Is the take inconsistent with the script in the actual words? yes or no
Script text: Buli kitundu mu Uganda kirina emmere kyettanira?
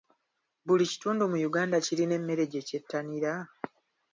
yes